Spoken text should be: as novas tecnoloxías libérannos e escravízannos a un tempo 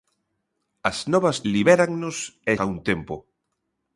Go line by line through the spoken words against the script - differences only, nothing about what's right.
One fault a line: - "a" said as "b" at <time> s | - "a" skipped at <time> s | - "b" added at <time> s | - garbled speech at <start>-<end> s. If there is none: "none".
- "tecnoloxías" skipped at 1.4 s
- "escravízannos" skipped at 2.5 s